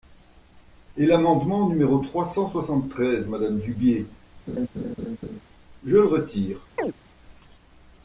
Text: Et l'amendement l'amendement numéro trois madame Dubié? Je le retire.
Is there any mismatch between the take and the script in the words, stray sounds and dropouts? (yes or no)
yes